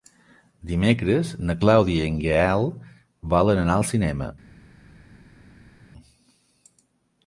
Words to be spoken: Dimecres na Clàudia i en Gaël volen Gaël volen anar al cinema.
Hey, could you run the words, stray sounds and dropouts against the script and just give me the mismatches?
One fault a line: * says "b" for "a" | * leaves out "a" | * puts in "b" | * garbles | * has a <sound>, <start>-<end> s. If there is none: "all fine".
* leaves out "Gaël volen"